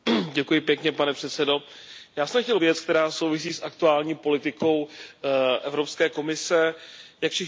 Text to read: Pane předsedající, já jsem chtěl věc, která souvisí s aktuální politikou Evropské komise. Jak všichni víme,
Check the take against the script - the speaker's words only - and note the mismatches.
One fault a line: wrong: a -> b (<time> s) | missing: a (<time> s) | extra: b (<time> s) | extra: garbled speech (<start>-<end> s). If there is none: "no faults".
no faults